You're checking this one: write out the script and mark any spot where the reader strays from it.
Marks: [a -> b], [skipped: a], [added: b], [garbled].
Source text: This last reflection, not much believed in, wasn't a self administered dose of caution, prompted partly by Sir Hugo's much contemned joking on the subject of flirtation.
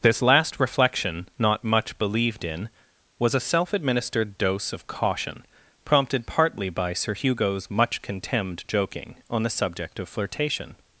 This last reflection, not much believed in, [wasn't -> was] a self administered dose of caution, prompted partly by Sir Hugo's much contemned joking on the subject of flirtation.